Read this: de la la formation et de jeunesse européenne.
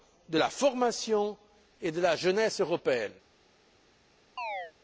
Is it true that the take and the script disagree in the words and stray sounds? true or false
true